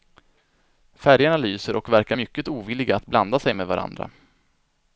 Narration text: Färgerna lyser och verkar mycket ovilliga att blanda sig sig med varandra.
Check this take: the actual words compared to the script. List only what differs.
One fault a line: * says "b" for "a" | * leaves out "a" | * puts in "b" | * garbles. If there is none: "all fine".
* leaves out "sig"